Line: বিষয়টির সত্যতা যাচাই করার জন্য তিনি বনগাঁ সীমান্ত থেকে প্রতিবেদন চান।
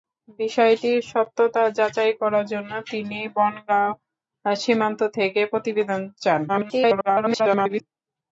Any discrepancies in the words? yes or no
yes